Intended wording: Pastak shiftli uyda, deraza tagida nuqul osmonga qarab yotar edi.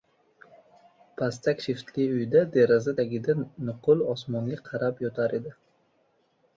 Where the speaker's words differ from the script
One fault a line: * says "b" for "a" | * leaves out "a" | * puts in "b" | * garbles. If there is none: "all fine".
all fine